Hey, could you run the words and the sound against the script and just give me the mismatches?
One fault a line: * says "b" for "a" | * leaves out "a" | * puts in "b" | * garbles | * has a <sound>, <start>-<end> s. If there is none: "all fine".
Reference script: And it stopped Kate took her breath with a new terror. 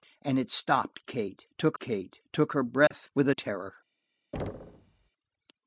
* puts in "Kate took"
* has a dropout, 2.9-2.9 s
* leaves out "new"
* has a thud, 4.3-5.1 s